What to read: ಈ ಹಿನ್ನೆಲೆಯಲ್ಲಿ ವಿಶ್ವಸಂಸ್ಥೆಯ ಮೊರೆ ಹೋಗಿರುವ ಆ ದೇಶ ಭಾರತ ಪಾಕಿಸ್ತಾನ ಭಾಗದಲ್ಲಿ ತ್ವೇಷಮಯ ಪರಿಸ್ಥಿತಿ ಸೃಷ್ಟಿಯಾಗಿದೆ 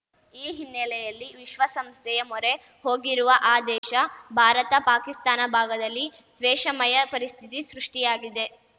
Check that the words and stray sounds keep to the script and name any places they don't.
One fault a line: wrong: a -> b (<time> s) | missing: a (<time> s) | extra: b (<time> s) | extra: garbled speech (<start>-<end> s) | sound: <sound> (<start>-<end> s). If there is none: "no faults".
sound: dropout (3.8-3.8 s)